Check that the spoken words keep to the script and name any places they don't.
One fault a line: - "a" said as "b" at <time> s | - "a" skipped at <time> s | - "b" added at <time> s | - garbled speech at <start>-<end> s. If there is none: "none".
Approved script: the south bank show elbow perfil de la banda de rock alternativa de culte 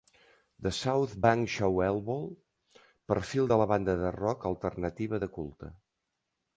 none